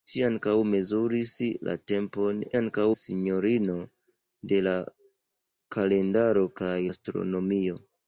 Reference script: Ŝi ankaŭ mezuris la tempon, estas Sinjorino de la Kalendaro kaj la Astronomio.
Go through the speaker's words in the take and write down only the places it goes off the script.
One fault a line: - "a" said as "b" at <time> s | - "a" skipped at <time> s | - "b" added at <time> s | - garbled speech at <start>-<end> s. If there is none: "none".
- "estas" said as "ankaŭ" at 2.6 s
- "la" skipped at 6.8 s